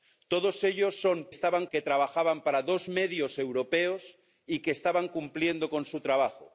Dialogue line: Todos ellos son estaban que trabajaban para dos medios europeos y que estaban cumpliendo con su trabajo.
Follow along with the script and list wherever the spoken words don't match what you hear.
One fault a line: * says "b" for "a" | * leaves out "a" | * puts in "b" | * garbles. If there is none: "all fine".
all fine